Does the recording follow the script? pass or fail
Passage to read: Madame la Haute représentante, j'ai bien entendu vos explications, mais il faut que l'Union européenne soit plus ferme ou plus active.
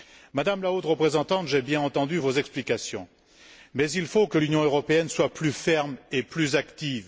fail